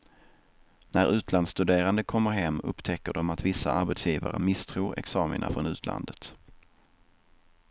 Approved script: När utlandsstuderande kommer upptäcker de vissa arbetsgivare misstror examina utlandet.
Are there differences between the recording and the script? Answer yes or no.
yes